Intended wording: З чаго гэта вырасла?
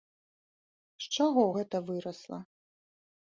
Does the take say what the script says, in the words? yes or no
yes